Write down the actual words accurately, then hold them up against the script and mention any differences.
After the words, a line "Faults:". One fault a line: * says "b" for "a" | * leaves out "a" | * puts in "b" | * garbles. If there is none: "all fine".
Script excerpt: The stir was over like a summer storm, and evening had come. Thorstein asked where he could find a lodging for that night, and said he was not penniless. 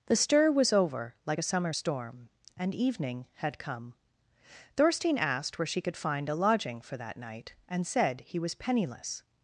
The stir was over like a summer storm, and evening had come. Thorstein asked where she could find a lodging for that night, and said he was penniless.
Faults:
* says "she" for "he"
* leaves out "not"